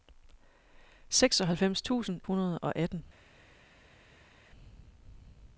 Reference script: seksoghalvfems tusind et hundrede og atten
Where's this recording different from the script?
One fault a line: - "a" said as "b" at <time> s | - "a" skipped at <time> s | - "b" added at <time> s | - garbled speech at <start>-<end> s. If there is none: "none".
- "et" skipped at 2.2 s